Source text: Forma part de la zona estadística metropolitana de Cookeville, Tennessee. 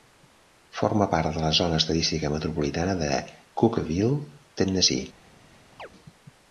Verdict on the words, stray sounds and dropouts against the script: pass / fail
fail